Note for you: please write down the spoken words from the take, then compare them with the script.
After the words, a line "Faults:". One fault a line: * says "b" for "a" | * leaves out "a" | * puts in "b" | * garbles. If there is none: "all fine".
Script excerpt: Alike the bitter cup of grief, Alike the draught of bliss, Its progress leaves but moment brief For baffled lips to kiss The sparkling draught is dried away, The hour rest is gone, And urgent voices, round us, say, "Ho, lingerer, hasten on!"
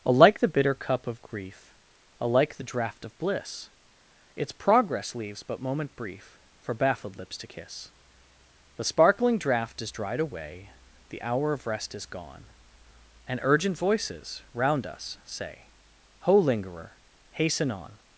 Alike the bitter cup of grief, Alike the draught of bliss, Its progress leaves but moment brief For baffled lips to kiss The sparkling draught is dried away, The hour of rest is gone, And urgent voices, round us, say, "Ho, lingerer, hasten on!"
Faults:
* puts in "of"